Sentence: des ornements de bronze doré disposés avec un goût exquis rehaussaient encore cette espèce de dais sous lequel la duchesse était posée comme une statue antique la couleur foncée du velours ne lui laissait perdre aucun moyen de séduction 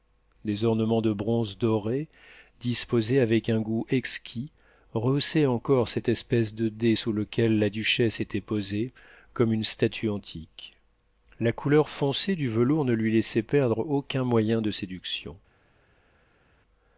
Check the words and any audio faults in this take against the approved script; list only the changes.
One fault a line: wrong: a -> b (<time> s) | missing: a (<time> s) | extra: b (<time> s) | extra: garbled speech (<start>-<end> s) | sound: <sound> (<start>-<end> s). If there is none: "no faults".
no faults